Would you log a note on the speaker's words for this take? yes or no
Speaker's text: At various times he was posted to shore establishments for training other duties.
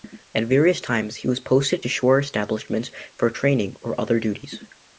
yes